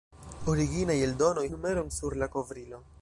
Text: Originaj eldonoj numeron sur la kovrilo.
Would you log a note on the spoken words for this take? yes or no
no